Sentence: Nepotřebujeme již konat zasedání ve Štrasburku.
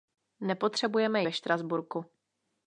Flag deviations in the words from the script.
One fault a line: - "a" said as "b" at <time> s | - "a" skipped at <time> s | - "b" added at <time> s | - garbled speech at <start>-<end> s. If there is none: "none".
- "již konat zasedání" skipped at 1.2 s